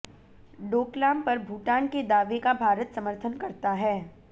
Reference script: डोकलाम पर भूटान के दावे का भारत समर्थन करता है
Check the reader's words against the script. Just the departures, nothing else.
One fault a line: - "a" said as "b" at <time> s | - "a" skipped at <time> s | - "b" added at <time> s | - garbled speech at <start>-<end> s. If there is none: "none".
none